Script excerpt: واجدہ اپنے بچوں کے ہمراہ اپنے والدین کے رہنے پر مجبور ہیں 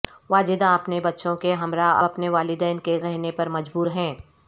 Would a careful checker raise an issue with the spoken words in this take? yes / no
no